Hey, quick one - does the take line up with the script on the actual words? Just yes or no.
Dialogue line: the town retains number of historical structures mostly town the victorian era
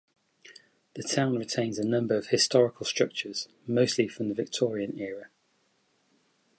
no